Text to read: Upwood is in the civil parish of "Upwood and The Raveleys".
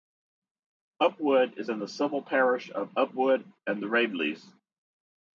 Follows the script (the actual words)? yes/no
yes